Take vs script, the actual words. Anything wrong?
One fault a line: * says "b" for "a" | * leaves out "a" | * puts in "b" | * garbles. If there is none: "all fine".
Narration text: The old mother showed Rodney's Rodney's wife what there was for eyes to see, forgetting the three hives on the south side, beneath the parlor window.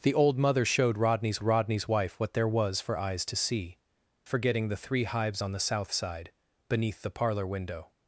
all fine